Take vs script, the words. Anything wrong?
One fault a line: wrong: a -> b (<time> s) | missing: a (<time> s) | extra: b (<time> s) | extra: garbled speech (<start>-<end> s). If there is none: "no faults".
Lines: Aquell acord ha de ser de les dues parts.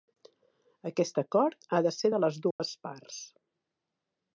wrong: Aquell -> Aquest (0.9 s)